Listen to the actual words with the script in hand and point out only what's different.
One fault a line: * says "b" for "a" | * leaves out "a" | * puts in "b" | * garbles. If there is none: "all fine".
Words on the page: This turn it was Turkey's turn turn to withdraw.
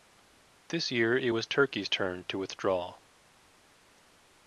* says "year" for "turn"
* leaves out "turn"